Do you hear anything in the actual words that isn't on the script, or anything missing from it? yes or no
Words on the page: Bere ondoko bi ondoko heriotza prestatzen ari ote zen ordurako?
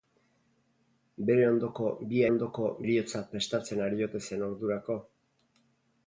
no